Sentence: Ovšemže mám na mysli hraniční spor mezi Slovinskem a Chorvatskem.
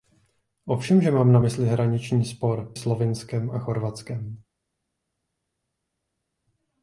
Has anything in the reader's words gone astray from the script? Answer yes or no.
yes